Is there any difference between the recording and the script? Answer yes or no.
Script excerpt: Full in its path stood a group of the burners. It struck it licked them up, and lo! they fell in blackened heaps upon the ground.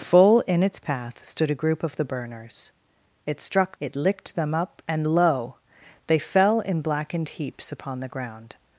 no